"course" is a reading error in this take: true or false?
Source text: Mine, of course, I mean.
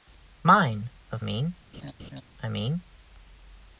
true